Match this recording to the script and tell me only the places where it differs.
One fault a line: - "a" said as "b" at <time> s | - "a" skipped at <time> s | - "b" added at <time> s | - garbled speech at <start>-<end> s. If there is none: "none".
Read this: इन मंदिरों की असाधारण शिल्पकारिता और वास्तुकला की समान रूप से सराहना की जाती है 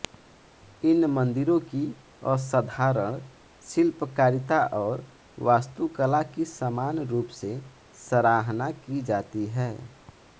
none